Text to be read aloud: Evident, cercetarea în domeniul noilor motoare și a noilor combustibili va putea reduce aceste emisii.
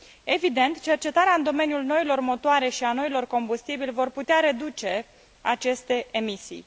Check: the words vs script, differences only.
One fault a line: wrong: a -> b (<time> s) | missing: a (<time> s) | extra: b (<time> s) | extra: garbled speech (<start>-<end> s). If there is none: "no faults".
no faults